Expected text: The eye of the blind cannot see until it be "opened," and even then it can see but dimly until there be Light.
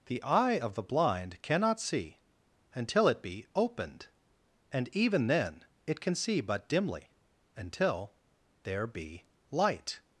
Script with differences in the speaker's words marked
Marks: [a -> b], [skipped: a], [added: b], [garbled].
The eye of the blind cannot see until it be "opened," and even then it can see but dimly until there be Light.